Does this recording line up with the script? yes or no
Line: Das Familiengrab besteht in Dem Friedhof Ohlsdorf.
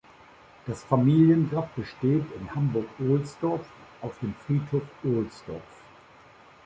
no